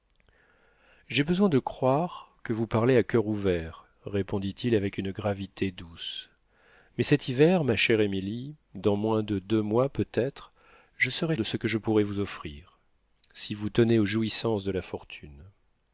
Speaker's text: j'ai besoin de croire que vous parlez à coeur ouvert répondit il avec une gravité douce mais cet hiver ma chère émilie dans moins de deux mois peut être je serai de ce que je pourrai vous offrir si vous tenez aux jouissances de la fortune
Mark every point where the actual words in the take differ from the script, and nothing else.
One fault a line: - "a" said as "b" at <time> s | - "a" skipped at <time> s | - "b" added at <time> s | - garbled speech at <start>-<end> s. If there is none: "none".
none